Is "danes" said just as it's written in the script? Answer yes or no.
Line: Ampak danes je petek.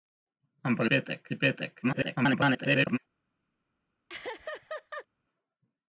no